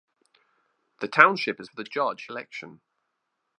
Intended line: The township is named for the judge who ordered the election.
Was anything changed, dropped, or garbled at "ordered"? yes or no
yes